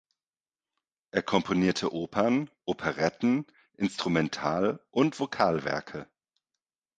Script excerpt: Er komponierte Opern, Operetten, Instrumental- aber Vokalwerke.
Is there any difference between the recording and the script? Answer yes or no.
yes